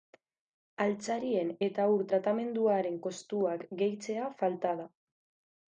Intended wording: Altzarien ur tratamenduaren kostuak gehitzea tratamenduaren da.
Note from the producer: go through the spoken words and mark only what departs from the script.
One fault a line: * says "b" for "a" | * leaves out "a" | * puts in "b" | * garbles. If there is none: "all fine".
* puts in "eta"
* says "falta" for "tratamenduaren"